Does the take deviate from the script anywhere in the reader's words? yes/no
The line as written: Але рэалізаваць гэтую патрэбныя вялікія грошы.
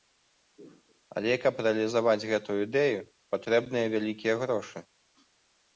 yes